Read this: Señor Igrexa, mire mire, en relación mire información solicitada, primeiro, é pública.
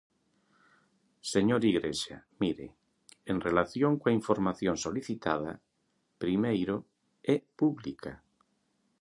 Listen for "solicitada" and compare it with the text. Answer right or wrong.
right